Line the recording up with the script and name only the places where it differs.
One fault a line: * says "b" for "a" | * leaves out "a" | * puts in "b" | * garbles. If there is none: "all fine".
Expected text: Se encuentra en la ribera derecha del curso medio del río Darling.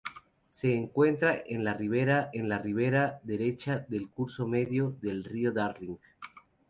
* puts in "en la ribera"